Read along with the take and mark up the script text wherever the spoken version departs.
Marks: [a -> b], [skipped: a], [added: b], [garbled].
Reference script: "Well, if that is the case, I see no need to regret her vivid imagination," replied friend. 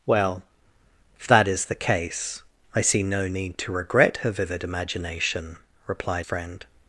"Well, if that is the case, I see no need to regret her vivid imagination," replied friend.